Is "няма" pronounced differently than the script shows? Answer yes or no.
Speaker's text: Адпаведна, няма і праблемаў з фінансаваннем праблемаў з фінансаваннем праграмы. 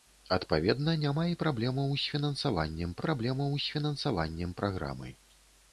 no